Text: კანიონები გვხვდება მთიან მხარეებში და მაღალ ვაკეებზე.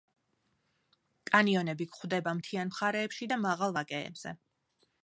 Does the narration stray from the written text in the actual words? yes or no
no